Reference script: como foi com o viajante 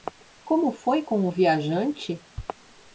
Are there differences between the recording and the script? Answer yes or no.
no